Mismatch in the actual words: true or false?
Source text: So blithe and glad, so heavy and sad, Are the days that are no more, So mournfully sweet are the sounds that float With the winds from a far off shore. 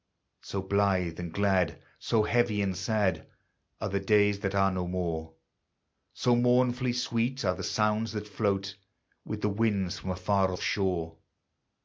false